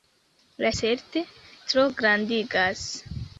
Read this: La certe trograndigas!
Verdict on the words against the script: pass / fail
pass